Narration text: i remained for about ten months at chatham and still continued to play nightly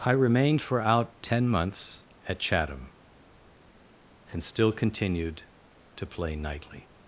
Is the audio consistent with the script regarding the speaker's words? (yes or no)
no